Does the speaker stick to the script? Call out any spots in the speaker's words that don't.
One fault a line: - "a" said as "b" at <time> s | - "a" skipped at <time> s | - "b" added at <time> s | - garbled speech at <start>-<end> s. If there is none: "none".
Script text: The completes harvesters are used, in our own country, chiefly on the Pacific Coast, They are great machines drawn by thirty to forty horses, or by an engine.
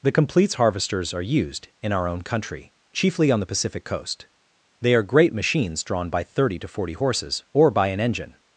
none